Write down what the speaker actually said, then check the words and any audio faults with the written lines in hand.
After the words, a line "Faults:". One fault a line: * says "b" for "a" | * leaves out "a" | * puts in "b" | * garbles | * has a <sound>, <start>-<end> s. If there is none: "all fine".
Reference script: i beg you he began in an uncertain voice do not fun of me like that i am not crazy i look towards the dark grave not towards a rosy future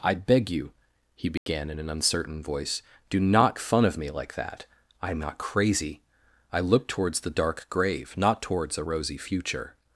i beg you he began in an uncertain voice do not fun of me like that i am not crazy i look towards the dark grave not towards a rosy future
Faults:
* has a dropout, 1.4-1.5 s